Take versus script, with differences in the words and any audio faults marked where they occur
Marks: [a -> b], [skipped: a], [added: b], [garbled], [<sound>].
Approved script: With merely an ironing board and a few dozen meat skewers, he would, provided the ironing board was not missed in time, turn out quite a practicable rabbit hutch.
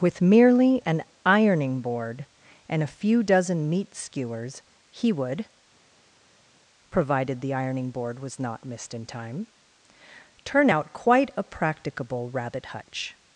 With merely an ironing board and a few dozen meat skewers, he would, provided the ironing board was not missed in time, turn out quite a practicable rabbit hutch.